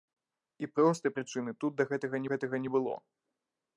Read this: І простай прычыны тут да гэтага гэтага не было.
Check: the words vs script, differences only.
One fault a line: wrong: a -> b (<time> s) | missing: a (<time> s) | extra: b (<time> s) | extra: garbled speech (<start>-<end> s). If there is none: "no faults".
no faults